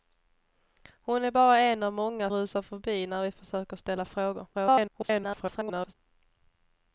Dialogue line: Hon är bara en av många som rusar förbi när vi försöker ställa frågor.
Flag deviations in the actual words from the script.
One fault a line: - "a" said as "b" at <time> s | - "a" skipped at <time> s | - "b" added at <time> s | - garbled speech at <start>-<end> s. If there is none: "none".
- "som" skipped at 2.3 s
- garbled speech at 4.5-5.9 s